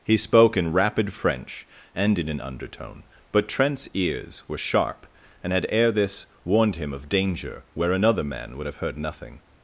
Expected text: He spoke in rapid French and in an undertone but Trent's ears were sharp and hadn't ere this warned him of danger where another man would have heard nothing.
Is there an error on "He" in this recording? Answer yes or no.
no